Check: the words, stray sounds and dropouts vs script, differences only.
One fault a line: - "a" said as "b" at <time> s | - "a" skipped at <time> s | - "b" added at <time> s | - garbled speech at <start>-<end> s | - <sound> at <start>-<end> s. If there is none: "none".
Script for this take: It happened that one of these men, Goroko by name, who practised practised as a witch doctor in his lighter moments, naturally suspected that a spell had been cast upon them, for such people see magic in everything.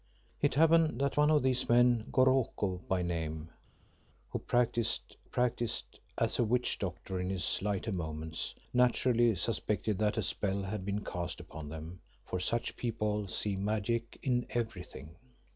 none